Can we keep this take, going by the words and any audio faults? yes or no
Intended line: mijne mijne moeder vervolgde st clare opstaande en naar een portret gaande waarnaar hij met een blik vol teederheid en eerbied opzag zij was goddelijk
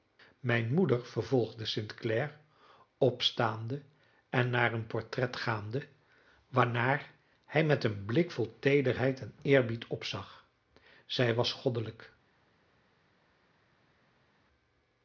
no